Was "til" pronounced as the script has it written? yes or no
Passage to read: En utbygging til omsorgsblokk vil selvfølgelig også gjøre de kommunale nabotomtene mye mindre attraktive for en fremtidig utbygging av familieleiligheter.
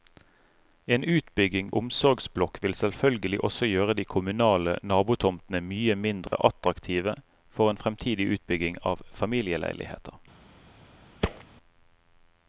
no